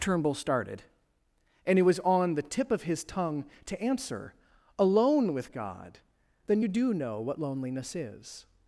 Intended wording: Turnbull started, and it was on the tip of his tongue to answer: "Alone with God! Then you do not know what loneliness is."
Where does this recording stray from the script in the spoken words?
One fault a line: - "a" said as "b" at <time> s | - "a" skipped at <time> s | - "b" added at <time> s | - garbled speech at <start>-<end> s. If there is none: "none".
- "not" skipped at 6.9 s